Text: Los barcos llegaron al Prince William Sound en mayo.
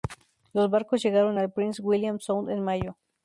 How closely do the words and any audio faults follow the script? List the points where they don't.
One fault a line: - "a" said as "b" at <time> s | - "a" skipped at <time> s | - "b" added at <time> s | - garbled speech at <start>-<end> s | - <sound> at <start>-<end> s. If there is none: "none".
none